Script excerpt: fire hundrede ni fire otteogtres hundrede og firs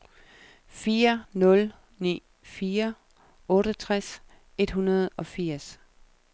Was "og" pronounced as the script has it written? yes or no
yes